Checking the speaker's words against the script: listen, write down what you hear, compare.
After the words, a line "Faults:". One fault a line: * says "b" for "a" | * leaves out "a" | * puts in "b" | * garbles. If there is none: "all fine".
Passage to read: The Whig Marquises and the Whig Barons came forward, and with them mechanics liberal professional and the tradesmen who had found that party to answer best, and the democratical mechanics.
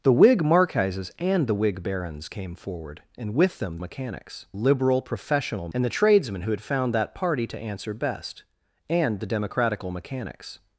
The Whig Marquises and the Whig Barons came forward, and with them mechanics liberal professional and the tradesmen who had found that party to answer best, and the democratical mechanics.
Faults:
all fine